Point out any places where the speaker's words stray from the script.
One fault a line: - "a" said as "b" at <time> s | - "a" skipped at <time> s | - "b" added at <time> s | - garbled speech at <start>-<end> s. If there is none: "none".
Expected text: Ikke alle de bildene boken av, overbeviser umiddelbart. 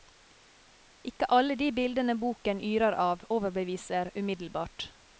- "yrer" added at 2.7 s